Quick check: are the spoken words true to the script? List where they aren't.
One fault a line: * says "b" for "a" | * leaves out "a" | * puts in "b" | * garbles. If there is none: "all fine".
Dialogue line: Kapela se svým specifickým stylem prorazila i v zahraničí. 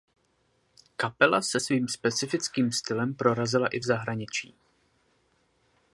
all fine